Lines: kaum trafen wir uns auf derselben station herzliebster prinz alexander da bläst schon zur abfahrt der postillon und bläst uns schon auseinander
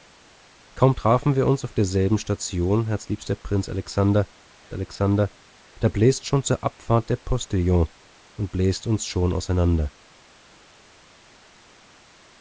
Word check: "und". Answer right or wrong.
right